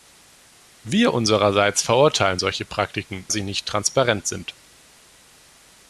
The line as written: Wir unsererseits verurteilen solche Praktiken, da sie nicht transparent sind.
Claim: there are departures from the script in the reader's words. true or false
true